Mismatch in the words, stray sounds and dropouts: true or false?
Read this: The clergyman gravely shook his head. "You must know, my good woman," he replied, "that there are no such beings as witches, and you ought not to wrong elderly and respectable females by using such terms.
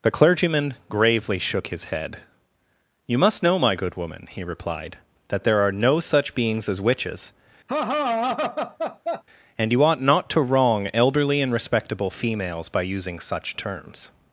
true